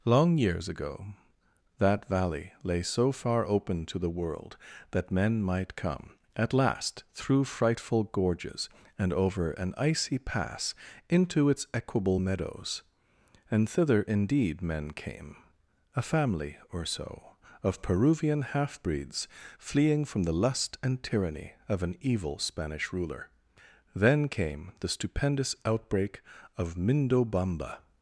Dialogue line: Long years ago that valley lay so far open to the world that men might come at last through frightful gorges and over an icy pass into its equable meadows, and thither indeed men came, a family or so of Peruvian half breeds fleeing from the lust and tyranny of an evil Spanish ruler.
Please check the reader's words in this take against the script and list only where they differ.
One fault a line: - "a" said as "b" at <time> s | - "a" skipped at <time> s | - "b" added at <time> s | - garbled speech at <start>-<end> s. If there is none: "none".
- "Then came the stupendous outbreak of Mindobamba" added at 24.0 s